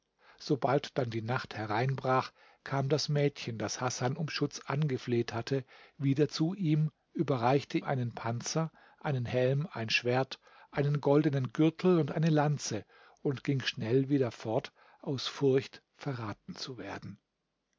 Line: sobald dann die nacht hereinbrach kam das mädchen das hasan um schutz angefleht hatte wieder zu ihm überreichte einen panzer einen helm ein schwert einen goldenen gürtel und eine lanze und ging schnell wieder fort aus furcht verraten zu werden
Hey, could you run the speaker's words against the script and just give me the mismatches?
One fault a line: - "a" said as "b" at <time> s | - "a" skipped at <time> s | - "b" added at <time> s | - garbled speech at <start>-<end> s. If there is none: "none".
none